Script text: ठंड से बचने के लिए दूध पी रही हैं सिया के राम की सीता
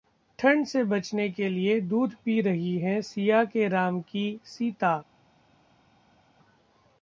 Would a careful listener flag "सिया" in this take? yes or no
no